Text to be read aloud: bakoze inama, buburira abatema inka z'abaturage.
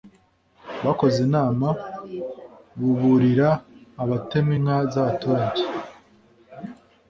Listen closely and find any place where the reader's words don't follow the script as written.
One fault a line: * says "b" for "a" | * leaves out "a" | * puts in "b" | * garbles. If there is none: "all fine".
all fine